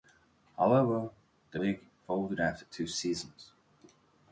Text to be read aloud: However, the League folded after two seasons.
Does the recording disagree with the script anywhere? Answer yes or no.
no